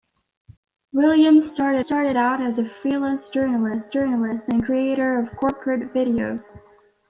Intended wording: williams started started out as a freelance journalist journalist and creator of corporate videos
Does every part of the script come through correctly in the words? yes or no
yes